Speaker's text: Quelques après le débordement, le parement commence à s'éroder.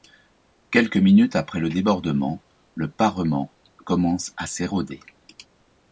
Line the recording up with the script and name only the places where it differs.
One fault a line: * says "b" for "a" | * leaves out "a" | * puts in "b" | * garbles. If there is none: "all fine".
* puts in "minutes"